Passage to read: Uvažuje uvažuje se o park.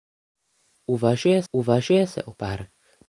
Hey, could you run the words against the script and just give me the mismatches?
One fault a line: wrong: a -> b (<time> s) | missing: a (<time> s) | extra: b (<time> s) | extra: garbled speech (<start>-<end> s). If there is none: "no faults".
no faults